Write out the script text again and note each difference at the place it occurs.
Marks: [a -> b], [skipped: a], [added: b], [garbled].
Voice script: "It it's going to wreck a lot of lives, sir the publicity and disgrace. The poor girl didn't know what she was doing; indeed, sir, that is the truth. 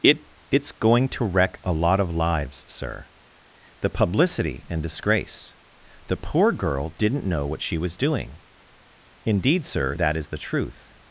"It it's going to wreck a lot of lives, sir the publicity and disgrace. The poor girl didn't know what she was doing; indeed, sir, that is the truth.